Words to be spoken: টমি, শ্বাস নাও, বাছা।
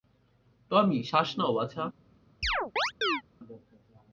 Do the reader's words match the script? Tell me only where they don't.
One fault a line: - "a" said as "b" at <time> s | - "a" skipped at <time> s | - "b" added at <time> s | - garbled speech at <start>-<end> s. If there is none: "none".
none